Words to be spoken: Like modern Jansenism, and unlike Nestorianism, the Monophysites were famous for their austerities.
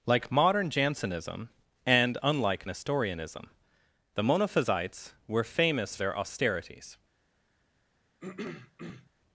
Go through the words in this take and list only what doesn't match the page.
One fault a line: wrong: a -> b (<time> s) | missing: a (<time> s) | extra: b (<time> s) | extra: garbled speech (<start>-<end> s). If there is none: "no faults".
missing: for (6.0 s)